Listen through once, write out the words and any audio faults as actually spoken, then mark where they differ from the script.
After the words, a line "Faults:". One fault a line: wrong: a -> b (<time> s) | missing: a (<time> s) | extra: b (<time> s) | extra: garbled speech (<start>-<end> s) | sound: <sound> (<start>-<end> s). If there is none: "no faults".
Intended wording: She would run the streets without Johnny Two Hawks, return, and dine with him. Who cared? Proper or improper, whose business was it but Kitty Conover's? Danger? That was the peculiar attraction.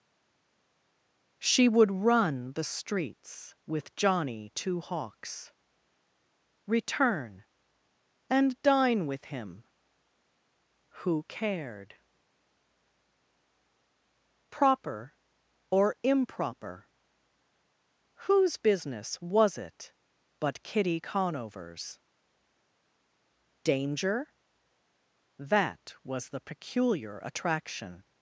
She would run the streets with Johnny Two Hawks, return, and dine with him. Who cared? Proper or improper, whose business was it but Kitty Conover's? Danger? That was the peculiar attraction.
Faults:
wrong: without -> with (3.7 s)